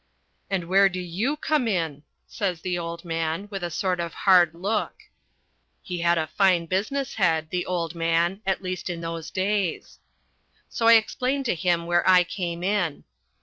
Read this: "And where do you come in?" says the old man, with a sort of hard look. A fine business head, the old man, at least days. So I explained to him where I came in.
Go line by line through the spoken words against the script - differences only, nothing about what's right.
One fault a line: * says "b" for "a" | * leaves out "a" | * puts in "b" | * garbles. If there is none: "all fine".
* puts in "He had"
* puts in "in those"